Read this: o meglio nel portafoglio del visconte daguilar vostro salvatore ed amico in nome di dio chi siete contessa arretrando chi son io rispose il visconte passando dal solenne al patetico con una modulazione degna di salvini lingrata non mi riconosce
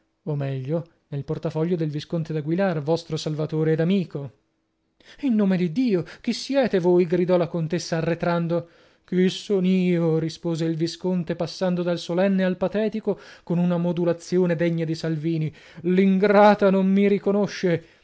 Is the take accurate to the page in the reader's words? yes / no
no